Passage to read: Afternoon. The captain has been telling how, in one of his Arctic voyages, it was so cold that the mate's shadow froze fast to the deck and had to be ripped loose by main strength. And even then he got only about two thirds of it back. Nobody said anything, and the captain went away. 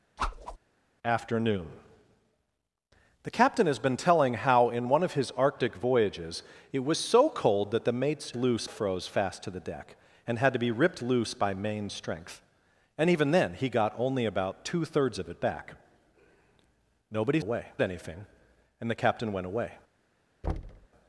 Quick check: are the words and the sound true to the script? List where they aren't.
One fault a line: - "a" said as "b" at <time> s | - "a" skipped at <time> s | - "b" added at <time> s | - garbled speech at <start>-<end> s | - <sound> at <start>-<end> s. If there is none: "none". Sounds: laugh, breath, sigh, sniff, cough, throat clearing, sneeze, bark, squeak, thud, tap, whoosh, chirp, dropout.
- whoosh at 0.2-0.6 s
- "shadow" said as "loose" at 8.3 s
- "said" said as "away" at 17.4 s
- thud at 20.4-20.9 s